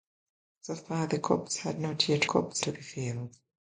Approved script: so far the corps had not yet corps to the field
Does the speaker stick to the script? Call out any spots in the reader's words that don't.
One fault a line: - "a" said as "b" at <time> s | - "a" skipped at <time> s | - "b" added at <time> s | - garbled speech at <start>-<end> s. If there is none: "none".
none